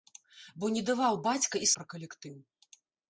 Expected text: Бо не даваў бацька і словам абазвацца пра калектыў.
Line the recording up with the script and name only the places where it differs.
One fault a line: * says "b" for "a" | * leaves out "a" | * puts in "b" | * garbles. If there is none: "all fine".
* leaves out "словам абазвацца"